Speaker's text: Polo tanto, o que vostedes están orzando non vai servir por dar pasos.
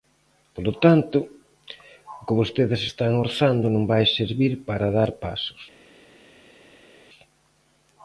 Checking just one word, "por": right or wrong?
wrong